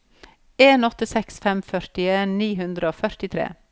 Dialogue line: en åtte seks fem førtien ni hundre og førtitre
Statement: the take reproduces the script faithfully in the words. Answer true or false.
true